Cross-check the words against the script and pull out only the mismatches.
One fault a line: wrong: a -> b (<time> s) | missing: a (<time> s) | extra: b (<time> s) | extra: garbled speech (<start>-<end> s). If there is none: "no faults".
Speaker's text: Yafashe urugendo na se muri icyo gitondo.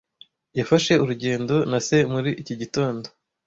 wrong: icyo -> iki (2.4 s)